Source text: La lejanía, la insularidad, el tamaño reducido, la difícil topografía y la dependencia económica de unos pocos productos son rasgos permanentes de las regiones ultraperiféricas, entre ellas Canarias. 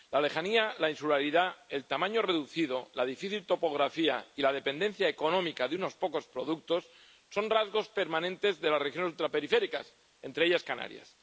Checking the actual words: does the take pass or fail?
pass